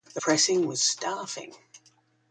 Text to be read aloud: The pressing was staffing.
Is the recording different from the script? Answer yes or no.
no